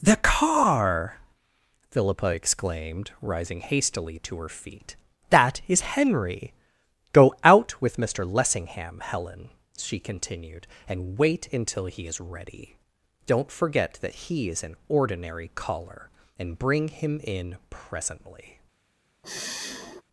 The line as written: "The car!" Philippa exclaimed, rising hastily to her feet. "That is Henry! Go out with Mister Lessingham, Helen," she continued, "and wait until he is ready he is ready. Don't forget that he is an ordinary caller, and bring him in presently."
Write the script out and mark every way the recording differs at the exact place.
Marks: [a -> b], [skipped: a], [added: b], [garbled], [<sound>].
"The car!" Philippa exclaimed, rising hastily to her feet. "That is Henry! Go out with Mister Lessingham, Helen," she continued, "and wait until he is ready [skipped: he is ready.] Don't forget that he is an ordinary caller, and bring him in presently." [sigh]